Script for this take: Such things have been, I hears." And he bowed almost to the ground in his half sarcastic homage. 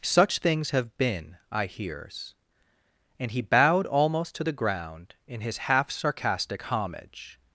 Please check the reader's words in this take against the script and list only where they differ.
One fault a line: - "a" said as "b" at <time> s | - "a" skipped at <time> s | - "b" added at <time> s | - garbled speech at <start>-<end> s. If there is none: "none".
none